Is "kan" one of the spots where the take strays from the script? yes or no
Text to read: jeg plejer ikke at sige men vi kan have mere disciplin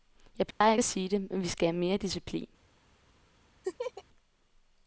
yes